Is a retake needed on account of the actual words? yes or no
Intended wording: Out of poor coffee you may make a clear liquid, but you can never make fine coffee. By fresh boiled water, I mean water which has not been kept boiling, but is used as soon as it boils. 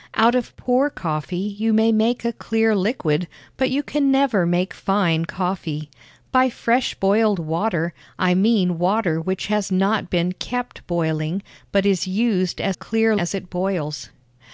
yes